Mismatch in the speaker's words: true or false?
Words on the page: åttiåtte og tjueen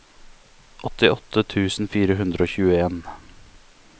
true